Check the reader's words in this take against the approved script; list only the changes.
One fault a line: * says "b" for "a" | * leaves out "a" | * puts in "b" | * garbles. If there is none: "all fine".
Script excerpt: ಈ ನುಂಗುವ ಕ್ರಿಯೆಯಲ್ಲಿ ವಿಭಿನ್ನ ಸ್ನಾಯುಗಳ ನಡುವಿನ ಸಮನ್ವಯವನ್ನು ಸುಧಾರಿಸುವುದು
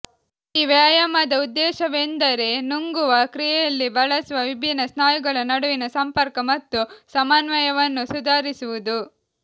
* puts in "ವ್ಯಾಯಾಮದ ಉದ್ದೇಶವೆಂದರೆ"
* puts in "ಬಳಸುವ"
* puts in "ಸಂಪರ್ಕ ಮತ್ತು"